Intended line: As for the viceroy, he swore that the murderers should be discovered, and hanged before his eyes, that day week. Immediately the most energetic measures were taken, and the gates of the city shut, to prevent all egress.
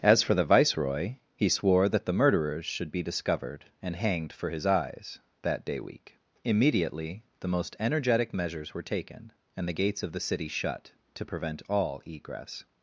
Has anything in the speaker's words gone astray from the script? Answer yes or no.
yes